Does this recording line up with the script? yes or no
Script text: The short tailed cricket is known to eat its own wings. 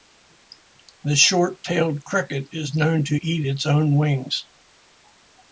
yes